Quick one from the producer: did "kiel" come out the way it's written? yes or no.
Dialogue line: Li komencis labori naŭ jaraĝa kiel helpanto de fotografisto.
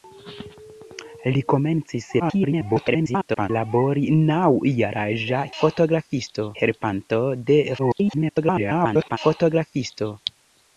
no